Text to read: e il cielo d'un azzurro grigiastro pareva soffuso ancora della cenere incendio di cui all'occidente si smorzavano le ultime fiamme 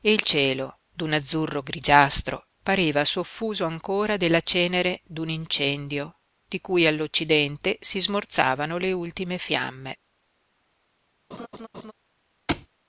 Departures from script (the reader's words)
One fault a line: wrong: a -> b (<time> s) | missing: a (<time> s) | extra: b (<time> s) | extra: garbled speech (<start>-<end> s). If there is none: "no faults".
extra: d'un (5.0 s)